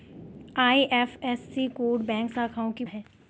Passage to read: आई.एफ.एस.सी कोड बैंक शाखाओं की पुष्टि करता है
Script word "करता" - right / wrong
wrong